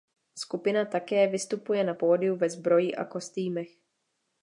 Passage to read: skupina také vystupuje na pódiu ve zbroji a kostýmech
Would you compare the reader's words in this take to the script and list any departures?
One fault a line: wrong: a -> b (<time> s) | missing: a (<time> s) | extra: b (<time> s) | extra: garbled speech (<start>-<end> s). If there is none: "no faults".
no faults